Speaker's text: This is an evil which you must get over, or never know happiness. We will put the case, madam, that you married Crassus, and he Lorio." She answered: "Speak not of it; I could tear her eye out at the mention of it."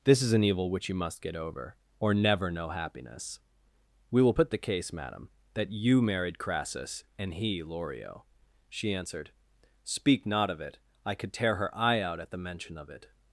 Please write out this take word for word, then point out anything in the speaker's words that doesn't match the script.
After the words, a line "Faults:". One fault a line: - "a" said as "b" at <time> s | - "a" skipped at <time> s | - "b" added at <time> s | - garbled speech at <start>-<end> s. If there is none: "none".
This is an evil which you must get over, or never know happiness. We will put the case, madam, that you married Crassus, and he Lorio." She answered: "Speak not of it; I could tear her eye out at the mention of it."
Faults:
none